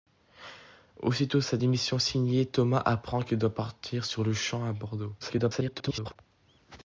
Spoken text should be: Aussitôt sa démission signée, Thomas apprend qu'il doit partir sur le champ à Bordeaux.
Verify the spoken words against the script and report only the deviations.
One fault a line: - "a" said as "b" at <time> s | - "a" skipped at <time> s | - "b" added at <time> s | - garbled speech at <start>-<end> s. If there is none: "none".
- garbled speech at 5.2-6.2 s